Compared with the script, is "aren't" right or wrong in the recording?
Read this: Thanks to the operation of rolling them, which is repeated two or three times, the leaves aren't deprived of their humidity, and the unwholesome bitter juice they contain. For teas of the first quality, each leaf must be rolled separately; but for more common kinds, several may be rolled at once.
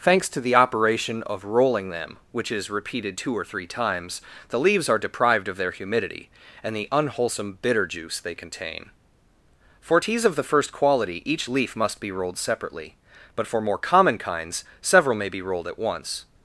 wrong